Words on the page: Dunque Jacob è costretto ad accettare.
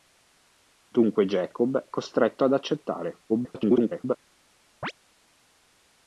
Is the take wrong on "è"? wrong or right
wrong